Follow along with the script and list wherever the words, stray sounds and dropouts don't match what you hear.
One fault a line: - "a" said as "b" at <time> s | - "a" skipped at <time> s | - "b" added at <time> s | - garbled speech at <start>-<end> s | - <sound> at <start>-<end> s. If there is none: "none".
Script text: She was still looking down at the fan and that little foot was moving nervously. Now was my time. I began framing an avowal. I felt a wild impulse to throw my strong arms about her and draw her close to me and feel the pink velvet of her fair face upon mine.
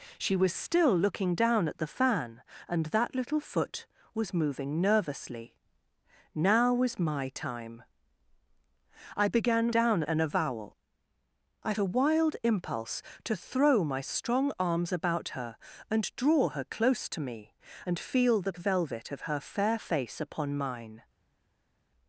- "framing" said as "down" at 9.7 s
- "felt" skipped at 11.7 s
- "pink" skipped at 18.5 s